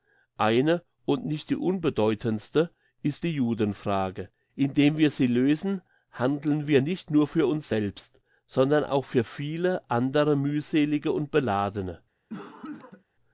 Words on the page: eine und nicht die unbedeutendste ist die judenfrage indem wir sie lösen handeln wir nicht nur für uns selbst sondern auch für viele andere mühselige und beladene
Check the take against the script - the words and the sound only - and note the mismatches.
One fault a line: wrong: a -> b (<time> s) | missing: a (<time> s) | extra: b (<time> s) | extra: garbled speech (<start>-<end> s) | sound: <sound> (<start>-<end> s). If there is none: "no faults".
sound: cough (12.3-13.0 s)